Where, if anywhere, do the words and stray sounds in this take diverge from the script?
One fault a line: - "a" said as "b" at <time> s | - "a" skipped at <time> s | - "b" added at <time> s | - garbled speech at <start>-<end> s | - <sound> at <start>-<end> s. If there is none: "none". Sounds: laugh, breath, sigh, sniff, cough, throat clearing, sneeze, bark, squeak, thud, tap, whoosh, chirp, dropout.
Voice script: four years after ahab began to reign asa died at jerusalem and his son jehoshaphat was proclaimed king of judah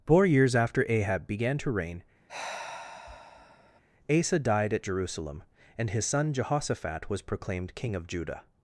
- sigh at 2.3-3.8 s